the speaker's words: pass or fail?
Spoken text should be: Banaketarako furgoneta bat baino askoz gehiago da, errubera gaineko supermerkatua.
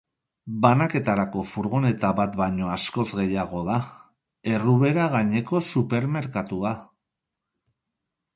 pass